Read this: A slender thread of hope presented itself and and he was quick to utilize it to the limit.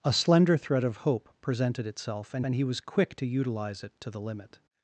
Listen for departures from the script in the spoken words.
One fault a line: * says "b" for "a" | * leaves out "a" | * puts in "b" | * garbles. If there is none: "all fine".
all fine